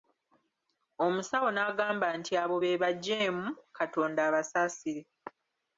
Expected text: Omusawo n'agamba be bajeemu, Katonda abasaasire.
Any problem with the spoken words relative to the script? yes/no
yes